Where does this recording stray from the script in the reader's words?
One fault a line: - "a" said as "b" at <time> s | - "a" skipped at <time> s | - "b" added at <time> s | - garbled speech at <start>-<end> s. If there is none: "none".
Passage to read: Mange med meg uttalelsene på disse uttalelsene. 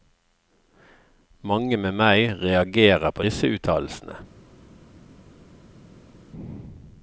- "uttalelsene" said as "reagerer" at 2.4 s